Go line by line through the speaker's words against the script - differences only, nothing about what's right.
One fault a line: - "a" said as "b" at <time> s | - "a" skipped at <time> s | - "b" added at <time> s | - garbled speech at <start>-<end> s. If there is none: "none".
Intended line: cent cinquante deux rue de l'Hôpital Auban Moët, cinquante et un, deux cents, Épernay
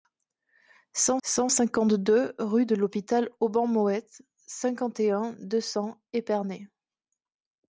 - "cent" added at 1.2 s